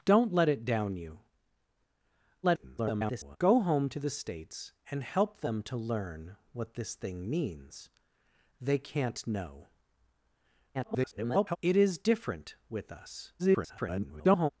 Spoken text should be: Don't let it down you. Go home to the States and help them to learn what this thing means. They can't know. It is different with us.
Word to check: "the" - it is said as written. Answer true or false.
true